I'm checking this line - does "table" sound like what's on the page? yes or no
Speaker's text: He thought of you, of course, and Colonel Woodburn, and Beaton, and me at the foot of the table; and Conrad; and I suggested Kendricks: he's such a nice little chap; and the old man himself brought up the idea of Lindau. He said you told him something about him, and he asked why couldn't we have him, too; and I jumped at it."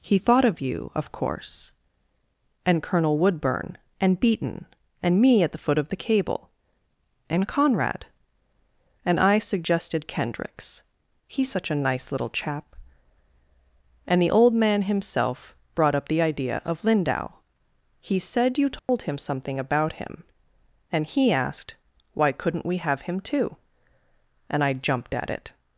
no